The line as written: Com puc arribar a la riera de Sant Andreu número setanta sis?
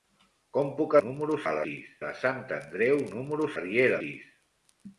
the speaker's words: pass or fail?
fail